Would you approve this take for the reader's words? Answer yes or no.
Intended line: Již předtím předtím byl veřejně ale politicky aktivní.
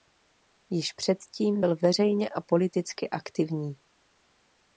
no